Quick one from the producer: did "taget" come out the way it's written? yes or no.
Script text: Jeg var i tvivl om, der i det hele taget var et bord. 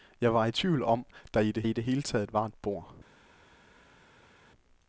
yes